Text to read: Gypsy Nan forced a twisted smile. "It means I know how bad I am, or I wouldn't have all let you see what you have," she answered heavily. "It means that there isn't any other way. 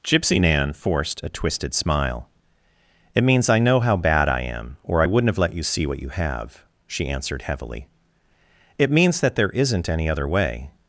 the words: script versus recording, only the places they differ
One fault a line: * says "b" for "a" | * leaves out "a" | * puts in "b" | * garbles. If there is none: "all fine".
* leaves out "all"